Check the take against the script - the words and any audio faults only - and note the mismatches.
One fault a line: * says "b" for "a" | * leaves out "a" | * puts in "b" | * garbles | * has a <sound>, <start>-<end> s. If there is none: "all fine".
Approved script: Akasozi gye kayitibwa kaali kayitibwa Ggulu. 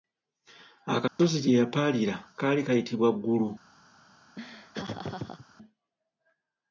* has a dropout, 1.1-1.2 s
* says "yapaalira" for "kayitibwa"
* has a laugh, 4.4-5.5 s